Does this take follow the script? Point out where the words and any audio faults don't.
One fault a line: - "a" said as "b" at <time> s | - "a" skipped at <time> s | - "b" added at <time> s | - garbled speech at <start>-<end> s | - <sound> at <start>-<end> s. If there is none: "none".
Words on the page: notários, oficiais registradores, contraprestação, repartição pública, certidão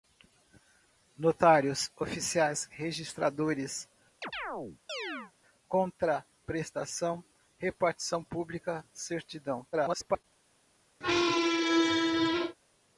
- chirp at 4.2-5.3 s
- garbled speech at 9.7-10.2 s
- squeak at 11.0-12.6 s